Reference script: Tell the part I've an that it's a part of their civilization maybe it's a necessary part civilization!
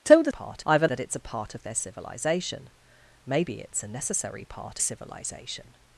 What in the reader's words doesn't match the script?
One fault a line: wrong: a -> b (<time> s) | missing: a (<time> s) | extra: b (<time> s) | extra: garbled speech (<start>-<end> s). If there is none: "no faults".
no faults